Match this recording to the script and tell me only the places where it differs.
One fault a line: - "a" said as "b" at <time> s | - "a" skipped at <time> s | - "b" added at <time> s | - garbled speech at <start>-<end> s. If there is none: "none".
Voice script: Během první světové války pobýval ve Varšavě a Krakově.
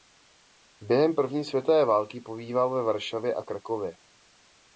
none